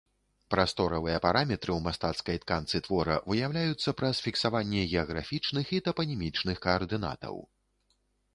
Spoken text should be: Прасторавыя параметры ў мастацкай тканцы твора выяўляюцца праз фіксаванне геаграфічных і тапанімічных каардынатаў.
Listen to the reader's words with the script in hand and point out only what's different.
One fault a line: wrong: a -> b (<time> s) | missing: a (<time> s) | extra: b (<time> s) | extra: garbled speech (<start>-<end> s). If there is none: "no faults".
no faults